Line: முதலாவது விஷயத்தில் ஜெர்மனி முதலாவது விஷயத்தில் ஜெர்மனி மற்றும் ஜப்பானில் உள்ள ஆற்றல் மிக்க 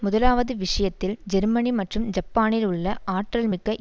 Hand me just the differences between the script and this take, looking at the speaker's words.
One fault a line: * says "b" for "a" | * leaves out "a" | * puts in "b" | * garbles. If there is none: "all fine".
* leaves out "முதலாவது விஷயத்தில் ஜெர்மனி"